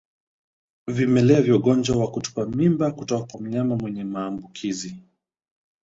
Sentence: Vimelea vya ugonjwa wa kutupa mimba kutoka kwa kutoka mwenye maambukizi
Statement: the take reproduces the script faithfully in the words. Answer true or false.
false